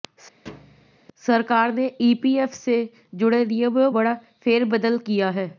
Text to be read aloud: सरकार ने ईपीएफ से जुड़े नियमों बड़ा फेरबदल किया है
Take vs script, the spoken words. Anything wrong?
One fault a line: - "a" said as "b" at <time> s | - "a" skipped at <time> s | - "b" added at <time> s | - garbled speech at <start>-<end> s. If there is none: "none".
none